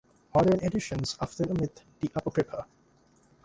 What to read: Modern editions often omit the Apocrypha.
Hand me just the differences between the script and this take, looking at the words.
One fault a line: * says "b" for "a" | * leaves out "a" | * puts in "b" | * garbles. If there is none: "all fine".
all fine